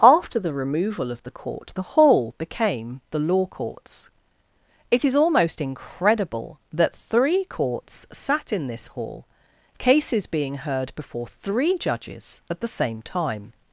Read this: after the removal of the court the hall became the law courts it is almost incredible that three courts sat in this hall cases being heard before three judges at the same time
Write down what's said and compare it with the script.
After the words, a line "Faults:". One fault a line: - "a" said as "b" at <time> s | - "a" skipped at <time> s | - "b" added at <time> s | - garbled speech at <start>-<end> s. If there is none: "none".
after the removal of the court the hall became the law courts it is almost incredible that three courts sat in this hall cases being heard before three judges at the same time
Faults:
none